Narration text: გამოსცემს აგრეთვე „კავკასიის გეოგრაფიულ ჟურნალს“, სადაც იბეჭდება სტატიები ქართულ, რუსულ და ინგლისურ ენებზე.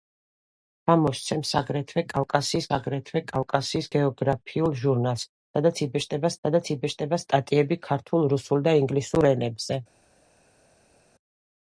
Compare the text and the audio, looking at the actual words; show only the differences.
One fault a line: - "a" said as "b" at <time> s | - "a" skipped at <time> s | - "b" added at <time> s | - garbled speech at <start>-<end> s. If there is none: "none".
- "აგრეთვე კავკასიის" added at 2.8 s
- "სადაც იბეჭდება" added at 6.5 s